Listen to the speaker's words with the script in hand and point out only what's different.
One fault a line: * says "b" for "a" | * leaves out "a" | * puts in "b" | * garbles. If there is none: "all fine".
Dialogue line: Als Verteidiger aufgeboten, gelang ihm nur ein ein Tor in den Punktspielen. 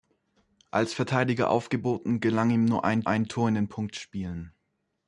all fine